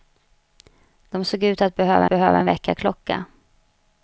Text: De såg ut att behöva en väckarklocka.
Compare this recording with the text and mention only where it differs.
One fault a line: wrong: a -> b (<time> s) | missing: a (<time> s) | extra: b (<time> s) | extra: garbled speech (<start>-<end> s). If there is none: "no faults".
extra: behöva (2.1 s)